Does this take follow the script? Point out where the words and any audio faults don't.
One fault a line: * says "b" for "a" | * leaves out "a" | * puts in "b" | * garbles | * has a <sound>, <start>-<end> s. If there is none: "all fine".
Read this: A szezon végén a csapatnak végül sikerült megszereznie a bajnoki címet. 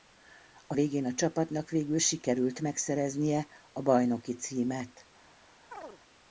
* leaves out "szezon"
* has a chirp, 5.7-6.0 s